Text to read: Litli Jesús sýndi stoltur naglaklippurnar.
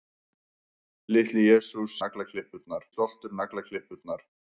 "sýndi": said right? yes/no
no